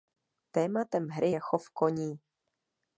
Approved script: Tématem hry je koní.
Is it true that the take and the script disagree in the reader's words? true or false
true